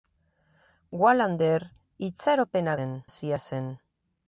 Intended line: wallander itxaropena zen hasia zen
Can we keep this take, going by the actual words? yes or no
yes